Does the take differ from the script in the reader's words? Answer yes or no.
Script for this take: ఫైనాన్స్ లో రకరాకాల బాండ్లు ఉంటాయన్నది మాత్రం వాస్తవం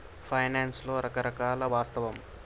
yes